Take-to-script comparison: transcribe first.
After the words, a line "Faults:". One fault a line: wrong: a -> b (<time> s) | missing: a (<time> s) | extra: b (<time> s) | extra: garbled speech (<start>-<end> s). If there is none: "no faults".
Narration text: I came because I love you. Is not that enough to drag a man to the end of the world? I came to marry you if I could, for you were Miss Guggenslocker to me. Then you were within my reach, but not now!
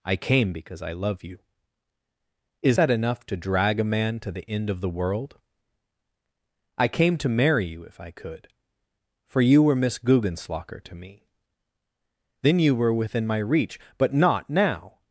I came because I love you. Is that enough to drag a man to the end of the world? I came to marry you if I could, for you were Miss Guggenslocker to me. Then you were within my reach, but not now!
Faults:
missing: not (2.8 s)